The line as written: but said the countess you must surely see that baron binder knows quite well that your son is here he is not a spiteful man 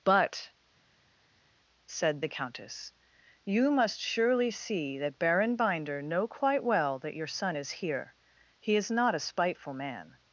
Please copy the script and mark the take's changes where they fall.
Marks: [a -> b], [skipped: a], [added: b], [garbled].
but said the countess you must surely see that baron binder [knows -> know] quite well that your son is here he is not a spiteful man